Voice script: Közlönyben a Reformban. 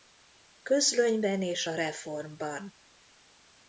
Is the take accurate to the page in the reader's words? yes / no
no